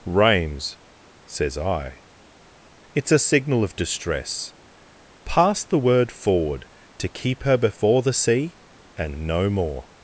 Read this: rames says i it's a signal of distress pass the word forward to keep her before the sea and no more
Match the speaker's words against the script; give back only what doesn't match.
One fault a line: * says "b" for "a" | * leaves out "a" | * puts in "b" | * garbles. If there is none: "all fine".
all fine